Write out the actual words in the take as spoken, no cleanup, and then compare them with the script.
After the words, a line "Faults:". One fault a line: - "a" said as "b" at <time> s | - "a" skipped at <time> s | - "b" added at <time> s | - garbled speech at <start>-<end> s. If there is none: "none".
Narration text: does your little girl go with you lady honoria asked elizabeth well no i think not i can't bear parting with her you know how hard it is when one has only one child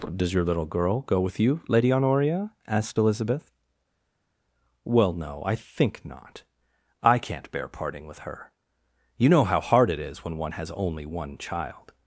does your little girl go with you lady honoria asked elizabeth well no i think not i can't bear parting with her you know how hard it is when one has only one child
Faults:
none